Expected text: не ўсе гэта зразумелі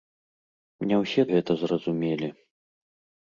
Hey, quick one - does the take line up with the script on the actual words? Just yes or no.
yes